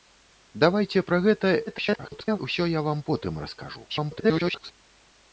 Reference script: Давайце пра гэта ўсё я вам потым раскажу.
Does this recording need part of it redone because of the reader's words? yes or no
yes